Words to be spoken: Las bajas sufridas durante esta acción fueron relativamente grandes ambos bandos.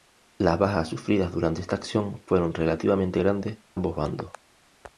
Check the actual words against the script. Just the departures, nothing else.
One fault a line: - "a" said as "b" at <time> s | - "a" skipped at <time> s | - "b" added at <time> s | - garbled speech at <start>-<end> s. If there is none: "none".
none